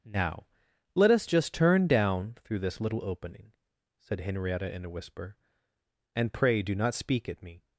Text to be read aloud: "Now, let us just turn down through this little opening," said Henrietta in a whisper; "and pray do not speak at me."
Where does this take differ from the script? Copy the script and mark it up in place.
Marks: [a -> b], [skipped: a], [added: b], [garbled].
"Now, let us just turn down through this little opening," said Henrietta in a whisper; "and pray do not speak at me."